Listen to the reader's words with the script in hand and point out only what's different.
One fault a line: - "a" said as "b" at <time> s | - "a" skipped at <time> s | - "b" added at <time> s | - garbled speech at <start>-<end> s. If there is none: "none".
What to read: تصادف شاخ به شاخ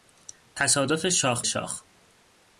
- "به" skipped at 1.4 s